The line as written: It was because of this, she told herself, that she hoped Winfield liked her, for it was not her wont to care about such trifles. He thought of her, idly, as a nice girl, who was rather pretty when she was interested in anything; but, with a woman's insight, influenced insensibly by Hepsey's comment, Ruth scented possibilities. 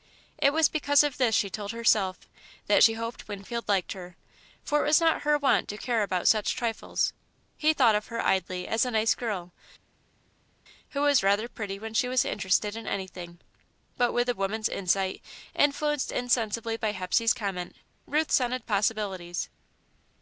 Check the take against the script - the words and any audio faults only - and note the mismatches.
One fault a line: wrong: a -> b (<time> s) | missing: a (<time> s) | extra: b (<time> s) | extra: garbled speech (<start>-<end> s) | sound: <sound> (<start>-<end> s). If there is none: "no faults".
no faults